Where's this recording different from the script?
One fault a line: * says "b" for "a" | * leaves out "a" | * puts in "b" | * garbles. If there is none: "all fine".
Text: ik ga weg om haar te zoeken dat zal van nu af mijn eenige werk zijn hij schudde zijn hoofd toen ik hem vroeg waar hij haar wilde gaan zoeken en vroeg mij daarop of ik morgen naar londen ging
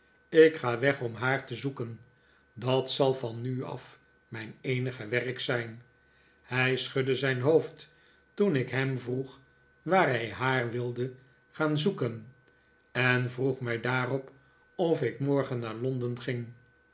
all fine